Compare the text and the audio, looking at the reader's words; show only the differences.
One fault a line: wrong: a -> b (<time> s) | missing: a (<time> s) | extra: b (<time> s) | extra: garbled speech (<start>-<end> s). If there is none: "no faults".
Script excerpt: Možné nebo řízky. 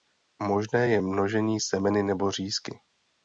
extra: je množení semeny (0.9 s)